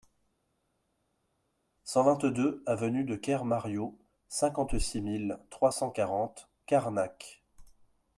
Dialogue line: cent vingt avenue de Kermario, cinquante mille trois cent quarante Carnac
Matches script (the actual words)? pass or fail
fail